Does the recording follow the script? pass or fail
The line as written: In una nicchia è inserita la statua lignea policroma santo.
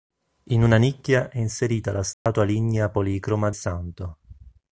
pass